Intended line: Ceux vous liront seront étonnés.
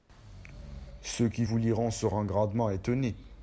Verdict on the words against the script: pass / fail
fail